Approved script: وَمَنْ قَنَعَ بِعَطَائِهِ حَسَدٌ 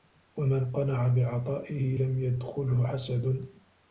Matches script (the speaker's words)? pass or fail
fail